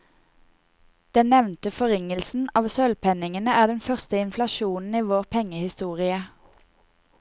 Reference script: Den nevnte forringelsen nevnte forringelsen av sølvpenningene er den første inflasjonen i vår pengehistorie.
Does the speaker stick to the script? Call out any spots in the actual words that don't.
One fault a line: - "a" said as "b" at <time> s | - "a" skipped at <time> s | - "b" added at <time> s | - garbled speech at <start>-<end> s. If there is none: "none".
- "nevnte forringelsen" skipped at 2.5 s